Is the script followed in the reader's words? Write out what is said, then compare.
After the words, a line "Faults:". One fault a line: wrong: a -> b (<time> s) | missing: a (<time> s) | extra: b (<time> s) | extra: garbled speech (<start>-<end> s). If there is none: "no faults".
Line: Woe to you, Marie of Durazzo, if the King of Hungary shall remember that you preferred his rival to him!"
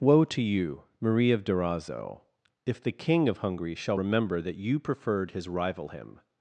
Woe to you, Marie of Durazzo, if the King of Hungary shall remember that you preferred his rival him!"
Faults:
missing: to (5.9 s)